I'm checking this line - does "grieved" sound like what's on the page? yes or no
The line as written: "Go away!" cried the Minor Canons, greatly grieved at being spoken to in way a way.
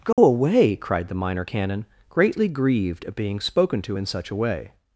yes